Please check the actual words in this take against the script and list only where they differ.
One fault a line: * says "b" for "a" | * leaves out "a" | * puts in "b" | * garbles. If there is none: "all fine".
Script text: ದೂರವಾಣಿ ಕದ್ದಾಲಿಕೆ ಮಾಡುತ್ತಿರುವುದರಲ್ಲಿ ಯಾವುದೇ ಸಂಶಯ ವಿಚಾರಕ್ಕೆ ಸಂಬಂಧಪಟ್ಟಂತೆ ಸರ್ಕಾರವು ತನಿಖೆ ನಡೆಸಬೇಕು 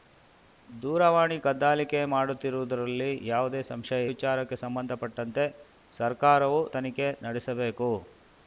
all fine